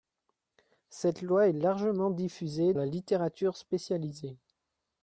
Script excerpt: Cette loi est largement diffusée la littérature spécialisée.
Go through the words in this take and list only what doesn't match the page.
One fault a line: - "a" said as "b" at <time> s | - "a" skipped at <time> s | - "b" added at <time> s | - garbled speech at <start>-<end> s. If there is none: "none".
none